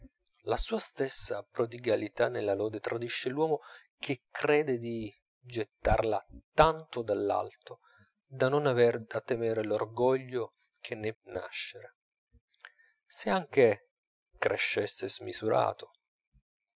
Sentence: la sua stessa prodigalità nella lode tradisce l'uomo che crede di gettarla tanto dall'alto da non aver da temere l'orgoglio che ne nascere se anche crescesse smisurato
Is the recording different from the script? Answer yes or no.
no